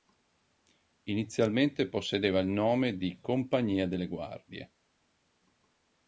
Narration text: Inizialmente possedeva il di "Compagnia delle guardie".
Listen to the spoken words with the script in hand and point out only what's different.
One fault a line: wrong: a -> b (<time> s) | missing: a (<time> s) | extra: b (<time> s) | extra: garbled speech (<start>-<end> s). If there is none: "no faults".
extra: nome (2.5 s)